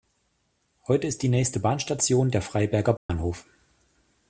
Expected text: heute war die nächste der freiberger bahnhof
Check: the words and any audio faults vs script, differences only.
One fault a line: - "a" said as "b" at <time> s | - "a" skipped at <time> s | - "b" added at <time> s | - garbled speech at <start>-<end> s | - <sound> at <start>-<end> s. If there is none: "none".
- "war" said as "ist" at 1.1 s
- "bahnstation" added at 1.6 s
- dropout at 3.0-3.1 s